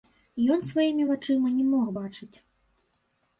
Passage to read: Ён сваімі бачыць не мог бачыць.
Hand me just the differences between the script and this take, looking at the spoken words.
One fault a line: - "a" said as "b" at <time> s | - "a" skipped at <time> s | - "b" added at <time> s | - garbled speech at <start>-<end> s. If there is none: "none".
- "бачыць" said as "вачыма" at 1.1 s